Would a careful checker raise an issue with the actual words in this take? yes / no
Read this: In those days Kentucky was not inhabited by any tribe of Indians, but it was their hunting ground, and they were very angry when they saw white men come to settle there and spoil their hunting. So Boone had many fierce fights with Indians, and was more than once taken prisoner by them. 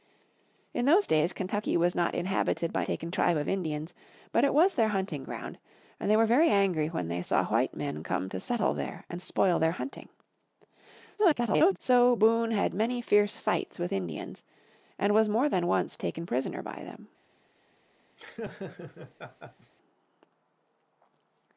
yes